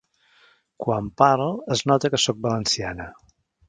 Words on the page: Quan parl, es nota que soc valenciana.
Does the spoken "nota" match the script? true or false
true